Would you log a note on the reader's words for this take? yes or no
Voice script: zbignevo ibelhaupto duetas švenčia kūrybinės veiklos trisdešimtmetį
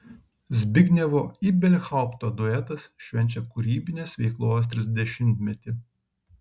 no